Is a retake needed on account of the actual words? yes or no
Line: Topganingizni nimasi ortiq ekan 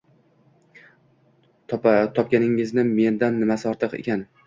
yes